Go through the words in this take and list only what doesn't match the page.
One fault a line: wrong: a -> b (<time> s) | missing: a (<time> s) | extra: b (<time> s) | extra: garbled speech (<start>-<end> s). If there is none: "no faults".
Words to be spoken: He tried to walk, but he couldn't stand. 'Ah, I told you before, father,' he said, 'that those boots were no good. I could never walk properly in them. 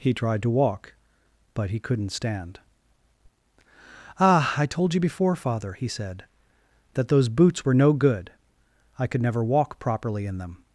no faults